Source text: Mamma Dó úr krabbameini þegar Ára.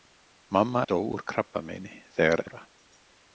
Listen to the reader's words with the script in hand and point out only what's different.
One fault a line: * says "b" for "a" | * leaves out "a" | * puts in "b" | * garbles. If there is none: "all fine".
all fine